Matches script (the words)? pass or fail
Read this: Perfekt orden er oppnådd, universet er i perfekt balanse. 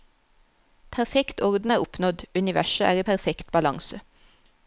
pass